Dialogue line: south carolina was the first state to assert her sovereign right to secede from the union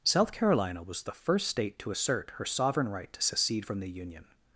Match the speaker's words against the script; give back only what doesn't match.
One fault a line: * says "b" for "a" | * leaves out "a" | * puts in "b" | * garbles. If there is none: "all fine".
all fine